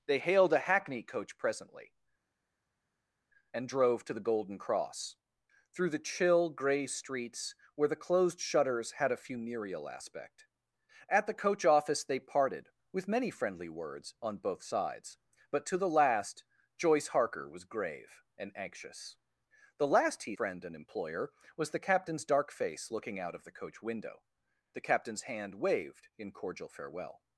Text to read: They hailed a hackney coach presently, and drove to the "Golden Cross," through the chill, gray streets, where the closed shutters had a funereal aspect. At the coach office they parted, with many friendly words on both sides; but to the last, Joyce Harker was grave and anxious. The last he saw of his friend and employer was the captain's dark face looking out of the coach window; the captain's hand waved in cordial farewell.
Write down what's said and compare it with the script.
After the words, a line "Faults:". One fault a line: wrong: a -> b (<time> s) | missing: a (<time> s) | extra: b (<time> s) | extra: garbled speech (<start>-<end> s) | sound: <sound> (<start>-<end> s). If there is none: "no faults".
They hailed a hackney coach presently, and drove to the "Golden Cross," through the chill, gray streets, where the closed shutters had a funereal aspect. At the coach office they parted, with many friendly words on both sides; but to the last, Joyce Harker was grave and anxious. The last he friend and employer was the captain's dark face looking out of the coach window; the captain's hand waved in cordial farewell.
Faults:
missing: saw of his (20.4 s)